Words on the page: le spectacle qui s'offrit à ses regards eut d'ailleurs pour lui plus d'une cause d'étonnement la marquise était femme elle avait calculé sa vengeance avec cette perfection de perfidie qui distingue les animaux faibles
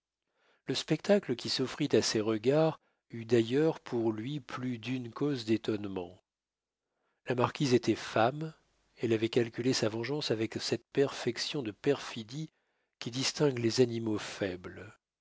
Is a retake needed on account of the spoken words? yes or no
no